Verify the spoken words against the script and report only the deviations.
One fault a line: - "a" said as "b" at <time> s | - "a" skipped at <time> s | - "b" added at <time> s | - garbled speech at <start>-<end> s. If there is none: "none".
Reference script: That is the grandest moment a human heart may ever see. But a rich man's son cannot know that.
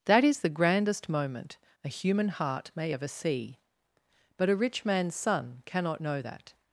none